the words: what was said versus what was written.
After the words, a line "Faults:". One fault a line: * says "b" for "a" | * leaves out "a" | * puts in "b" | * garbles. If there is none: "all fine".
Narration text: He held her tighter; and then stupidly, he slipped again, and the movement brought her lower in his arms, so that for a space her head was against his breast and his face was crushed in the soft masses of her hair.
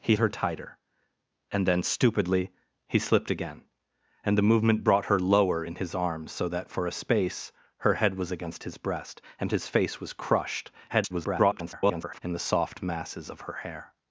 He her tighter; and then stupidly, he slipped again, and the movement brought her lower in his arms, so that for a space her head was against his breast and his face was crushed [garbled] in the soft masses of her hair.
Faults:
* leaves out "held"
* garbles